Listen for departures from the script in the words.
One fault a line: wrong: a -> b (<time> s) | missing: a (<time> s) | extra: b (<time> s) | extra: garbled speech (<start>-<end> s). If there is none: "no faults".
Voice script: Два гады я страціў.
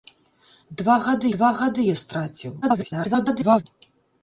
extra: два гады (1.3 s)
extra: garbled speech (2.6-3.6 s)